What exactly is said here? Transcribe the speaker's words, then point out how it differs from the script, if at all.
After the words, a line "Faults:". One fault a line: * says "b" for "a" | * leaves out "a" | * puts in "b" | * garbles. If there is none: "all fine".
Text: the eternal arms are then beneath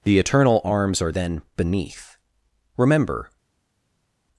the eternal arms are then beneath remember
Faults:
* puts in "remember"